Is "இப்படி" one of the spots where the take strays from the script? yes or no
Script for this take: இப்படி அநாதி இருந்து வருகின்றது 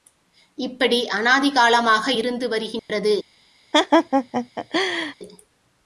no